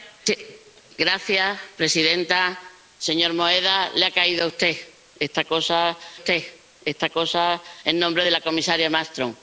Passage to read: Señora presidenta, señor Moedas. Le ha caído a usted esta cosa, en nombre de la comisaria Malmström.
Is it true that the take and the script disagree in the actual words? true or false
true